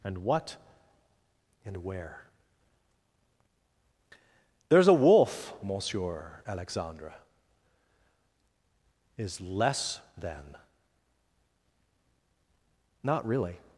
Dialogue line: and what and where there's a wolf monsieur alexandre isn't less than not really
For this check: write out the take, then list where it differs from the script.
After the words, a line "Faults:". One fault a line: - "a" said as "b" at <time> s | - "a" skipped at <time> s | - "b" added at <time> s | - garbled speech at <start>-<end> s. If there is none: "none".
and what and where there's a wolf monsieur alexandre is less than not really
Faults:
- "isn't" said as "is" at 9.2 s